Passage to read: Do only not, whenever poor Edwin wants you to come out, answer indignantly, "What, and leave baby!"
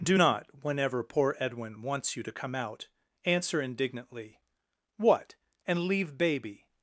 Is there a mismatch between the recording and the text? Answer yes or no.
yes